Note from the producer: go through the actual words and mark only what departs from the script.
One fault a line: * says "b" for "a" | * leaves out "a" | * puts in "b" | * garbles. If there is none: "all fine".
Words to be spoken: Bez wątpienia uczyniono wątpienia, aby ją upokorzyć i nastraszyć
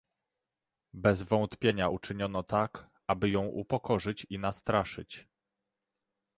* says "tak" for "wątpienia"